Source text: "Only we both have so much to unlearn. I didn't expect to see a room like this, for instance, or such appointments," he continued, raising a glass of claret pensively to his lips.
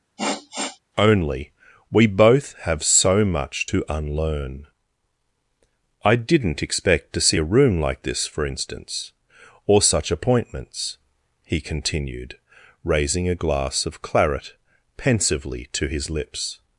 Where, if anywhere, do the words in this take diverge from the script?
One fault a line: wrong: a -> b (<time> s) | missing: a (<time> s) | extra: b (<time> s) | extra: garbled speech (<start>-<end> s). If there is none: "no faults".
no faults